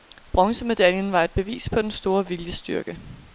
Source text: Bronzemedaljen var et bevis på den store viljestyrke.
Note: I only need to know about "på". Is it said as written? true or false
true